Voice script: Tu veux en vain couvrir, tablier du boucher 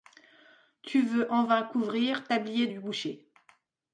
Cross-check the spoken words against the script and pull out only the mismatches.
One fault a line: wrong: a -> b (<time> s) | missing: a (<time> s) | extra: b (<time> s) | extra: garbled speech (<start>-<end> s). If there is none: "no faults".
no faults